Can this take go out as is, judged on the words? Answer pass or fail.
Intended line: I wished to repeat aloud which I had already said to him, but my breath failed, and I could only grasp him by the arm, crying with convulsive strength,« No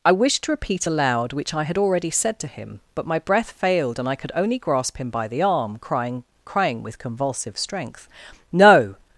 fail